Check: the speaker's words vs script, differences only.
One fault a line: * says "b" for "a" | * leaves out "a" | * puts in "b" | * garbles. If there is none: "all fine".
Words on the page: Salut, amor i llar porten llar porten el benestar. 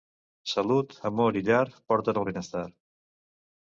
* leaves out "llar porten"